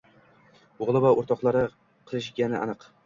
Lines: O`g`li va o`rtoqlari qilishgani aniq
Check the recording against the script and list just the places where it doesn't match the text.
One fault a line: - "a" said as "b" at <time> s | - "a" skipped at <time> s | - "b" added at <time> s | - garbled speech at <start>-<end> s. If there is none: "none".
none